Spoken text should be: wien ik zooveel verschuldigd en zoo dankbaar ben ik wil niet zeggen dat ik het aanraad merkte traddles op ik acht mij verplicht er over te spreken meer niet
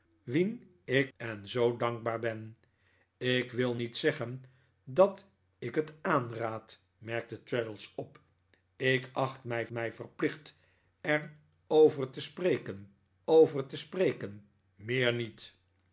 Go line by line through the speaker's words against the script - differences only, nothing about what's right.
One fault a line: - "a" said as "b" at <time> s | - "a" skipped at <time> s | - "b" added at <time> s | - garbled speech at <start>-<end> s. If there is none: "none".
- "zooveel verschuldigd" skipped at 1.1 s
- "mij" added at 9.7 s
- "over te spreken" added at 13.2 s